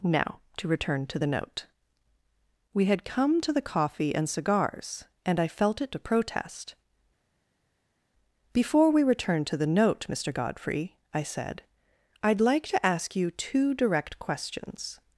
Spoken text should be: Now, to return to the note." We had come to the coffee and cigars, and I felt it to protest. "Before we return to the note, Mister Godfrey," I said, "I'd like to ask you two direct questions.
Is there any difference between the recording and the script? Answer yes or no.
no